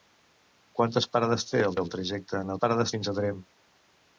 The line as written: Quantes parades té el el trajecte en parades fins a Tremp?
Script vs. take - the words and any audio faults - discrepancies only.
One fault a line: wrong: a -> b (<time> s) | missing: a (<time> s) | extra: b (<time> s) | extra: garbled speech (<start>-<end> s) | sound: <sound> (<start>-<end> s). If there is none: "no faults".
no faults